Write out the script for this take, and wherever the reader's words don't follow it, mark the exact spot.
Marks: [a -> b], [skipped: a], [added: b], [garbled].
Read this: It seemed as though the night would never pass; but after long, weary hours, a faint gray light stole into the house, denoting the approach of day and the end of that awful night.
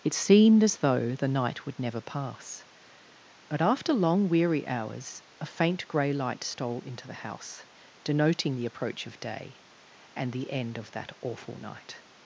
It seemed as though the night would never pass; but after long, weary hours, a faint gray light stole into the house, denoting the approach of day and the end of that awful night.